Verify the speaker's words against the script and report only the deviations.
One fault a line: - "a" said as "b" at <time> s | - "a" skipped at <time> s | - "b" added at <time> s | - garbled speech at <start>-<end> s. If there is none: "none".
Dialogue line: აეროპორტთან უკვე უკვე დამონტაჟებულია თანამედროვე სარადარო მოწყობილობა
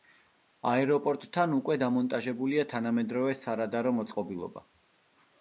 - "უკვე" skipped at 1.8 s